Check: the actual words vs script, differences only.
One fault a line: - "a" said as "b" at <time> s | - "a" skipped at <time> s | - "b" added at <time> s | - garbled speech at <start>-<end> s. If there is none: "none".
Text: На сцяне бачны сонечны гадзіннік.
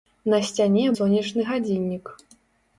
- "бачны" skipped at 0.8 s